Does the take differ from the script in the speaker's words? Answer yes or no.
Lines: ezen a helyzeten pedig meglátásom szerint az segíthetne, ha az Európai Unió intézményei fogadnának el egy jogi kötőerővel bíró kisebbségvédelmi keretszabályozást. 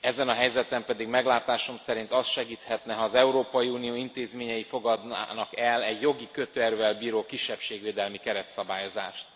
no